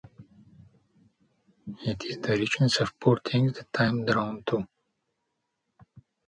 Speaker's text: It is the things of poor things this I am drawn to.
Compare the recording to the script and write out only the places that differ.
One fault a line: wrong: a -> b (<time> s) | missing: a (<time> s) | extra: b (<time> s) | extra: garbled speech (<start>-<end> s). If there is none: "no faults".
wrong: things -> richness (2.4 s)
wrong: this -> that (3.5 s)